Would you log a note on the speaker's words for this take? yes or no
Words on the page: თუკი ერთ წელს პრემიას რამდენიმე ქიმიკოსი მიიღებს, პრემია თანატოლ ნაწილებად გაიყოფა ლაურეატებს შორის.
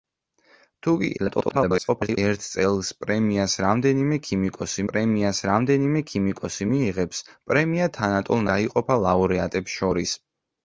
yes